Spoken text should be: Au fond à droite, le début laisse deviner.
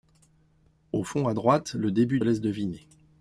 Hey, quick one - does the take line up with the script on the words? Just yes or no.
yes